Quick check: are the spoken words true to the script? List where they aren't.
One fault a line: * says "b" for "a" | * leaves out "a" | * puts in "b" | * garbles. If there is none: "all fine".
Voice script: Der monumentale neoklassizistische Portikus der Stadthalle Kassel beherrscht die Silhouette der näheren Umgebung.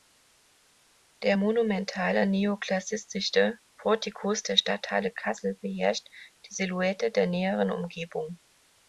all fine